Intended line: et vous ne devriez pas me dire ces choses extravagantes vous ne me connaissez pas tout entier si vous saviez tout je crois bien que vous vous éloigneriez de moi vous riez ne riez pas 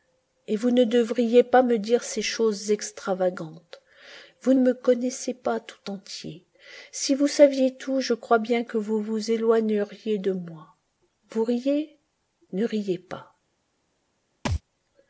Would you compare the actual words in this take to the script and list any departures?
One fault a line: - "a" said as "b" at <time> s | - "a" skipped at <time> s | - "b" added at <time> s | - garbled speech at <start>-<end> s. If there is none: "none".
- "ne" skipped at 4.5 s